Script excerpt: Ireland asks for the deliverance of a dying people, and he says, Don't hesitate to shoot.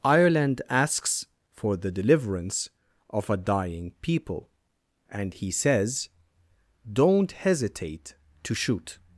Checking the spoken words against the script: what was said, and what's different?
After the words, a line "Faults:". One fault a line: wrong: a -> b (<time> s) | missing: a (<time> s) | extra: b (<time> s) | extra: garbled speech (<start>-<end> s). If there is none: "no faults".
Ireland asks for the deliverance of a dying people, and he says, Don't hesitate to shoot.
Faults:
no faults